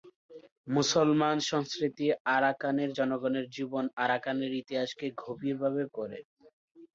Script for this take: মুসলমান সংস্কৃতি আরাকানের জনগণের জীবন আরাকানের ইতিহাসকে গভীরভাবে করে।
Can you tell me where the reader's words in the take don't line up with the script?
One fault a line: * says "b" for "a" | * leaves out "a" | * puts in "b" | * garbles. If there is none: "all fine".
all fine